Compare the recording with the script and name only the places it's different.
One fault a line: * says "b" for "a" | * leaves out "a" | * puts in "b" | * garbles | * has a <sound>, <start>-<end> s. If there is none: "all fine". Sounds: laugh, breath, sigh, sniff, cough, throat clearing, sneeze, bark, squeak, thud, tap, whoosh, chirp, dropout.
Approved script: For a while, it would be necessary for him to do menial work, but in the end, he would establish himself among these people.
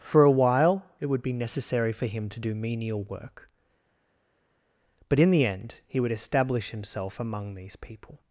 all fine